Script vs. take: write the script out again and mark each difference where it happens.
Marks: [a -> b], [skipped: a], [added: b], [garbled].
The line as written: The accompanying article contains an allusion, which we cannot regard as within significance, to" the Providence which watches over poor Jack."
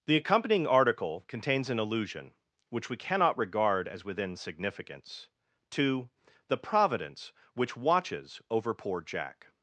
The accompanying article contains an allusion, which we cannot regard as within significance, to" the Providence which watches over poor Jack."